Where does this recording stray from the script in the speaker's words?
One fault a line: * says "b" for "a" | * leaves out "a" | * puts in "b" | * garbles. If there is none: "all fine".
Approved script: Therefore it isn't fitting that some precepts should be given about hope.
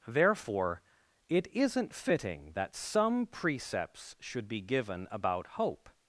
all fine